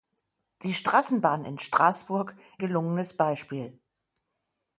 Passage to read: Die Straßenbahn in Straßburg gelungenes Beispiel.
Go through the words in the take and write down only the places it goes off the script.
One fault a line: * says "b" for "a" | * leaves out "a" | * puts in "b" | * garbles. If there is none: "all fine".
all fine